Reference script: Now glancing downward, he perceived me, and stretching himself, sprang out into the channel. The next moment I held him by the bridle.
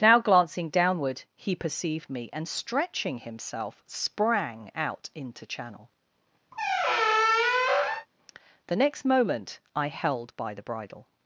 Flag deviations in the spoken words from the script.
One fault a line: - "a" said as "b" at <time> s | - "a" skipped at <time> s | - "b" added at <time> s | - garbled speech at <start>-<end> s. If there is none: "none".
- "the" skipped at 5.5 s
- "him" skipped at 10.3 s